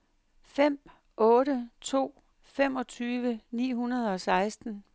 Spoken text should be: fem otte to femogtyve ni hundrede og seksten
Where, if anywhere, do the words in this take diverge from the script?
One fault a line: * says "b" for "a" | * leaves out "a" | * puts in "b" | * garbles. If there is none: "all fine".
all fine